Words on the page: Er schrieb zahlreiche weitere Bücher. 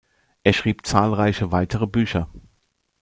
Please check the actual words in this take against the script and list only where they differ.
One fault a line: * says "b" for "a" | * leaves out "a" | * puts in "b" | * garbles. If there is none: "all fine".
all fine